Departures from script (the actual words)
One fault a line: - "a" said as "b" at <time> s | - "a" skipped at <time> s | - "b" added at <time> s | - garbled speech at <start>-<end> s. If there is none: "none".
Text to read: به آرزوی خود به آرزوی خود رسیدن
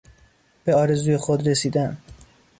- "به آرزوی خود" skipped at 1.5 s